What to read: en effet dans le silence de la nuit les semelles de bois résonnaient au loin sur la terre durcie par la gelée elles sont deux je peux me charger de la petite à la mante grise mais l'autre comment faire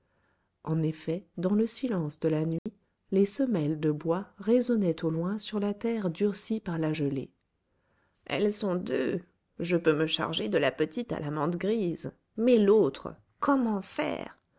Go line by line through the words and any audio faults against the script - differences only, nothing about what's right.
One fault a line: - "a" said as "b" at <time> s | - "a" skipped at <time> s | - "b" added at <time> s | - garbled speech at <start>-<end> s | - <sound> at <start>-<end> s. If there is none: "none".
- dropout at 2.6-2.7 s